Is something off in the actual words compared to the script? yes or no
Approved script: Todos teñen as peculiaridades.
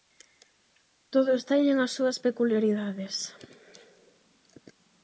yes